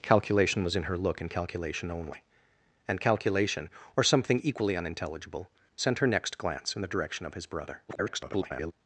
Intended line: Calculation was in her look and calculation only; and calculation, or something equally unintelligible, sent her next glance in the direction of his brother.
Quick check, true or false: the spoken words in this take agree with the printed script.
false